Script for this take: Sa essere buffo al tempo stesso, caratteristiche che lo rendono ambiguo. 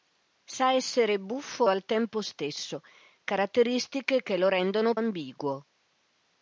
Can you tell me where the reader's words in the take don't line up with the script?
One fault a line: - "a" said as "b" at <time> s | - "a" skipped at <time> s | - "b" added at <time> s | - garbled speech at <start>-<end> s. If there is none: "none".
none